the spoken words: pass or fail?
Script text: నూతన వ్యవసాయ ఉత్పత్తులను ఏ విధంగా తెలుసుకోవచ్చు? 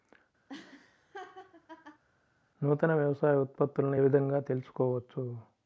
fail